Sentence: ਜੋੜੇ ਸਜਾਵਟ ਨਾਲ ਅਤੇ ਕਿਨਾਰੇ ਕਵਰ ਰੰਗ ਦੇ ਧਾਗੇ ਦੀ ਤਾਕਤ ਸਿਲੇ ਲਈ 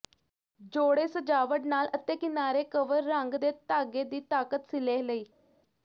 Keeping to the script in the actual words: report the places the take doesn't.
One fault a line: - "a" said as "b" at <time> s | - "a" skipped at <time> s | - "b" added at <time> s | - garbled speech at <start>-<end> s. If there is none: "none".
none